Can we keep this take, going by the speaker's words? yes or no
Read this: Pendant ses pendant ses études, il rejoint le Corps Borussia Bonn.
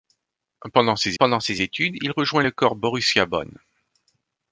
yes